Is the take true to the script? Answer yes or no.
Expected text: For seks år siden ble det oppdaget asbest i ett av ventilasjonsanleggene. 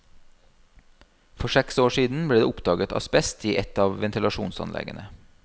yes